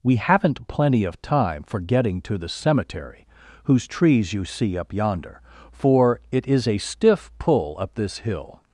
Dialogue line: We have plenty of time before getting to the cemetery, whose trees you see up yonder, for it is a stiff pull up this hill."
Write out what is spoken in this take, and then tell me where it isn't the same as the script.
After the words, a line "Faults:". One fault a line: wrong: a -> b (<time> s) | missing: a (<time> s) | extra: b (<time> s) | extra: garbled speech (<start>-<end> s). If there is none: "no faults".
We haven't plenty of time for getting to the cemetery, whose trees you see up yonder, for it is a stiff pull up this hill."
Faults:
wrong: have -> haven't (0.1 s)
wrong: before -> for (1.6 s)